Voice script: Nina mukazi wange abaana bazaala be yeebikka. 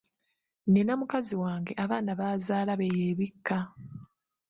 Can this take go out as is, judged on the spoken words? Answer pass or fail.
pass